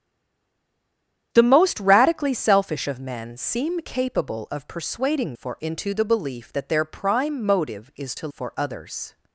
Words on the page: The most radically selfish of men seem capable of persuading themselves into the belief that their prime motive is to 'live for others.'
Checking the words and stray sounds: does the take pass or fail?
fail